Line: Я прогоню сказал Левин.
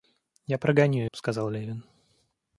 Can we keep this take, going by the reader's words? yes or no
yes